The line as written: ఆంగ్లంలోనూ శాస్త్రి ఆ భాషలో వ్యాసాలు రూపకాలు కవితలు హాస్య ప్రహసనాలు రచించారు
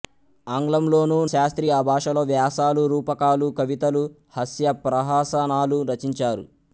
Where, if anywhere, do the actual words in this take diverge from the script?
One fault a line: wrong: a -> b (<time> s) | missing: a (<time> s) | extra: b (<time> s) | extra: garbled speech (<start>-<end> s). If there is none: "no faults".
no faults